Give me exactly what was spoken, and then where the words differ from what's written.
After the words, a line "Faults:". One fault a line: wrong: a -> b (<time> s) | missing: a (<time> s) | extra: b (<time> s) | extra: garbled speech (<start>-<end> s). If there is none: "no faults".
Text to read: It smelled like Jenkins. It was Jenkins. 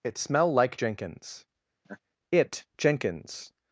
It smell like Jenkins. It Jenkins.
Faults:
wrong: smelled -> smell (0.2 s)
missing: was (2.7 s)